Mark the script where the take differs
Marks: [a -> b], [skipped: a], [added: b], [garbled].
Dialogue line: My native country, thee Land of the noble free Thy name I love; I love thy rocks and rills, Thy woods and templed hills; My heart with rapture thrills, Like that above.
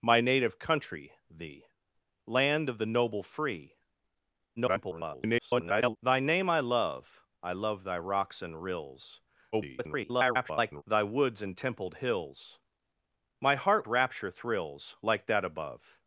My native country, thee Land of the noble free [garbled] Thy name I love; I love thy rocks and rills, [garbled] Thy woods and templed hills; My heart [skipped: with] rapture thrills, Like that above.